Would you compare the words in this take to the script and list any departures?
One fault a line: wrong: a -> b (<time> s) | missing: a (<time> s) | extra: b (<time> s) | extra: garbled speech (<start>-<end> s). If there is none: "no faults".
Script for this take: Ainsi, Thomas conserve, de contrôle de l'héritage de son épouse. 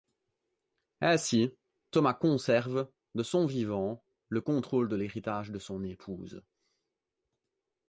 extra: son vivant le (3.2 s)